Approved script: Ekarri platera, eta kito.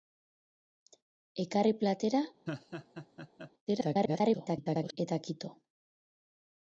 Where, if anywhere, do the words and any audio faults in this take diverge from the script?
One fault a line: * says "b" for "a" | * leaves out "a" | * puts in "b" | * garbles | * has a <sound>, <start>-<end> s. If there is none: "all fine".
* has a laugh, 2.5-3.5 s
* garbles